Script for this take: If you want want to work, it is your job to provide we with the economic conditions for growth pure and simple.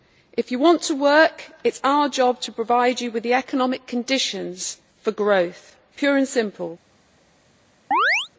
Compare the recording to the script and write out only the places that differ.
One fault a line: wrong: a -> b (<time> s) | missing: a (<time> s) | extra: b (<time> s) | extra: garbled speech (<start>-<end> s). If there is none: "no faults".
missing: want (0.8 s)
wrong: your -> our (1.8 s)
wrong: we -> you (3.0 s)